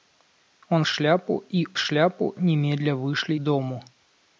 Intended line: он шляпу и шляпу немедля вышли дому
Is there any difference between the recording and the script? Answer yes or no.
no